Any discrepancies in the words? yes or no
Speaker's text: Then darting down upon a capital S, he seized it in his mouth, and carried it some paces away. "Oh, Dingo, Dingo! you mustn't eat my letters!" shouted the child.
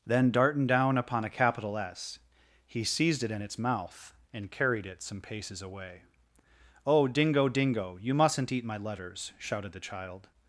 yes